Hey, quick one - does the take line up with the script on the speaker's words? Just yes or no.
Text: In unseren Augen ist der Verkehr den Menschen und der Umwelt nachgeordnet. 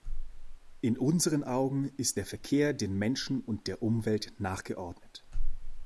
yes